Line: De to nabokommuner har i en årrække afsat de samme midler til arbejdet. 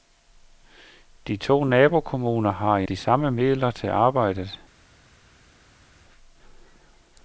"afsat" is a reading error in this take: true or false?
true